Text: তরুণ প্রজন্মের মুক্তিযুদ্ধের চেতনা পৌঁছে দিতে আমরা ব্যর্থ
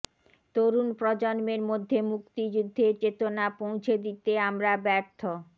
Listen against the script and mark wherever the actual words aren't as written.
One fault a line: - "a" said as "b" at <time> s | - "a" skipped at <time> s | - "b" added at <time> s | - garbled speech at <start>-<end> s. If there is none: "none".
- "মধ্যে" added at 1.7 s